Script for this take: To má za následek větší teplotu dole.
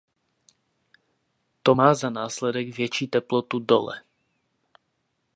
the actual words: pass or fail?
pass